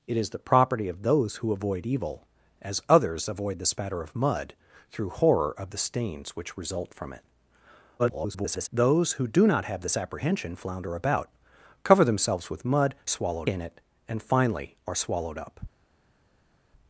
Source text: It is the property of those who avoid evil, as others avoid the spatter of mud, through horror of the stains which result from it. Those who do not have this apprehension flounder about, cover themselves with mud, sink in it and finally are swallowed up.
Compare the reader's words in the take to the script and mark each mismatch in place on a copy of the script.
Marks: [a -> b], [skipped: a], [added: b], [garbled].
It is the property of those who avoid evil, as others avoid the spatter of mud, through horror of the stains which result from it. [garbled] Those who do not have this apprehension flounder about, cover themselves with mud, [sink -> swallowed] in it and finally are swallowed up.